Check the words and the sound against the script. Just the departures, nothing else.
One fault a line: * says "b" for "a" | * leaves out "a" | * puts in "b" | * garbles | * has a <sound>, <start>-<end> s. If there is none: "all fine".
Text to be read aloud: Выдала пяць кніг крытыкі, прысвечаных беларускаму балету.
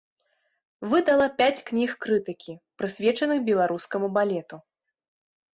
all fine